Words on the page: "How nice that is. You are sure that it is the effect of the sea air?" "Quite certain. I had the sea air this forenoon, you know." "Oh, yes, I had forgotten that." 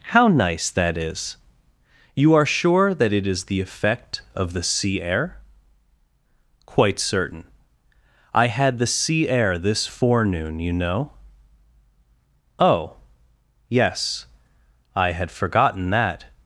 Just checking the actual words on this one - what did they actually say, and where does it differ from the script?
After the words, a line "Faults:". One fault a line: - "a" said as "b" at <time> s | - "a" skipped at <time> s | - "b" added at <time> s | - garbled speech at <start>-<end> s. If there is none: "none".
"How nice that is. You are sure that it is the effect of the sea air?" "Quite certain. I had the sea air this forenoon, you know." "Oh, yes, I had forgotten that."
Faults:
none